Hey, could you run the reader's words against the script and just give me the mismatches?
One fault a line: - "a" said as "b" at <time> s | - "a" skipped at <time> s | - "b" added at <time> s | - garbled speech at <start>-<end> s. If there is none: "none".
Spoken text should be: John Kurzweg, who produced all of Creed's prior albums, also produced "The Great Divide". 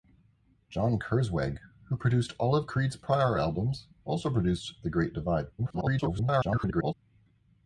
- garbled speech at 5.6-6.9 s